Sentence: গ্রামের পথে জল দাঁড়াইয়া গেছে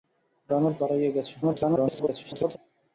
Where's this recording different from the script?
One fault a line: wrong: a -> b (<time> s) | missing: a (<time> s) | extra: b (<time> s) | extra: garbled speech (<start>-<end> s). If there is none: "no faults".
missing: পথে জল (0.7 s)
extra: garbled speech (1.4-2.6 s)